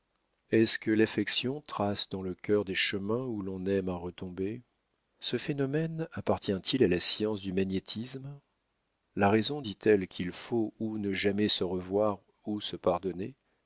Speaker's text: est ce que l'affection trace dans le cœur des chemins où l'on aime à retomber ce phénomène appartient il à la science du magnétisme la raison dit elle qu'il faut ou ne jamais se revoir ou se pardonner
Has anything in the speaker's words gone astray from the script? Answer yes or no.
no